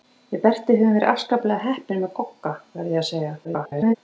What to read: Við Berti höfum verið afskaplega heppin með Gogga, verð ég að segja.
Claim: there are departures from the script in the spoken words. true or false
true